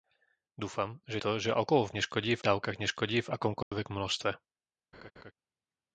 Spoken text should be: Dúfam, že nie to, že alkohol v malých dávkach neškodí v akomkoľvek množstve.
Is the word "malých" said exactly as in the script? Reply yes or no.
no